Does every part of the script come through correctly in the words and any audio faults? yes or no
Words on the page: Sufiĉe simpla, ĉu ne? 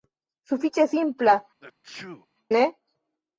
no